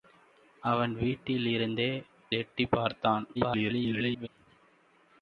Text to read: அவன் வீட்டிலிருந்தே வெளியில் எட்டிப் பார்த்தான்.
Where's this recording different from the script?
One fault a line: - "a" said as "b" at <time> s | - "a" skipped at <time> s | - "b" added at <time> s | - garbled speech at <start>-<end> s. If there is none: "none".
- "வெளியில்" skipped at 2.0 s
- garbled speech at 3.3-4.3 s